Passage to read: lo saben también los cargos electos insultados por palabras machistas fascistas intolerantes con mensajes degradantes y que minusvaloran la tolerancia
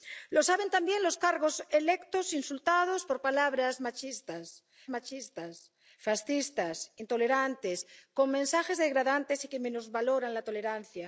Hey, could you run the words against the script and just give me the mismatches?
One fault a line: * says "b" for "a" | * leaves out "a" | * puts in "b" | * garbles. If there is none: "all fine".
* puts in "machistas"